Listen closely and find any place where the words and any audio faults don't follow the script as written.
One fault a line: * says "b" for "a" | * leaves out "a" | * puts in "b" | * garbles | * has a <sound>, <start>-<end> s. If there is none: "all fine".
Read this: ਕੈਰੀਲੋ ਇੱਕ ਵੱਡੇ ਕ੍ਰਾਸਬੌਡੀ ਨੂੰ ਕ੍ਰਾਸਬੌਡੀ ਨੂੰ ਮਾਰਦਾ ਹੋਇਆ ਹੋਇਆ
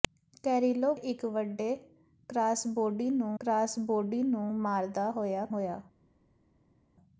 all fine